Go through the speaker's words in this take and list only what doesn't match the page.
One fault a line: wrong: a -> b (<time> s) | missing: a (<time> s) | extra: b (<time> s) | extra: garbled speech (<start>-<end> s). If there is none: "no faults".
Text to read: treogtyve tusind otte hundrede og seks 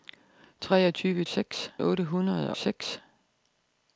wrong: tusind -> seks (1.3 s)
missing: og (2.5 s)